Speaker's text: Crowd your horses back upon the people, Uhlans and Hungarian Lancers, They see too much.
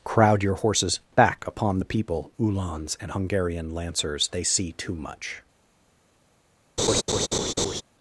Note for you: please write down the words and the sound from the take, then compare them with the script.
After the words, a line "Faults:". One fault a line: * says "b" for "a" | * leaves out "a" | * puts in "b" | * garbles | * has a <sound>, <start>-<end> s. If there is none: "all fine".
Crowd your horses back upon the people, Uhlans and Hungarian Lancers, They see too much.
Faults:
* has a laugh, 6.8-7.8 s